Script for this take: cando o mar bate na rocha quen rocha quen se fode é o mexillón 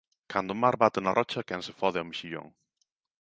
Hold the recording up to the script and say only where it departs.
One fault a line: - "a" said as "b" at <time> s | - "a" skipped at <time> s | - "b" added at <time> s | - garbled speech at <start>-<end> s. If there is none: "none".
- "rocha quen" skipped at 1.6 s